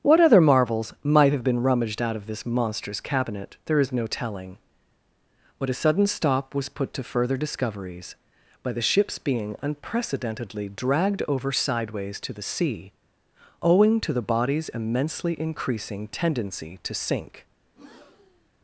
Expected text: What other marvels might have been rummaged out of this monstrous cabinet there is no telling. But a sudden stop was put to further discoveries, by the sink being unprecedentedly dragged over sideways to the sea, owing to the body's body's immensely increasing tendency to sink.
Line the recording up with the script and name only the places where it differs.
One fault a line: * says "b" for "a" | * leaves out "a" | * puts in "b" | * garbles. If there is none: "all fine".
* says "ship's" for "sink"
* leaves out "body's"